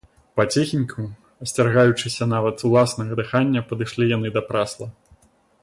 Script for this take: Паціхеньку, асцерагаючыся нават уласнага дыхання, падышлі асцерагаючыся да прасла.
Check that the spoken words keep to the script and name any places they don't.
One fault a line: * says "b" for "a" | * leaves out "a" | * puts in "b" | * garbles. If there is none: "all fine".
* says "яны" for "асцерагаючыся"